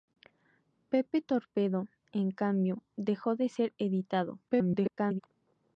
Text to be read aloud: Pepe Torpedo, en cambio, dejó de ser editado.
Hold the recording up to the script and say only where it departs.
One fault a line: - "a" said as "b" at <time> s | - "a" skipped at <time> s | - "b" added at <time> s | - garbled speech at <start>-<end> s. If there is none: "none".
- garbled speech at 4.5-5.2 s